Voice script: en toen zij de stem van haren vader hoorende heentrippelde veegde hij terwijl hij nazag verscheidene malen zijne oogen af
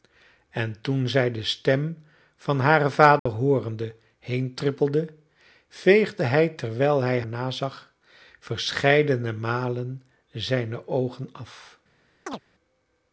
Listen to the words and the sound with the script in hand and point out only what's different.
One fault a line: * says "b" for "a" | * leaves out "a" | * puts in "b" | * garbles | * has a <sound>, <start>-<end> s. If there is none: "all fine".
* has a dropout, 3.2-3.3 s
* has a chirp, 12.3-12.4 s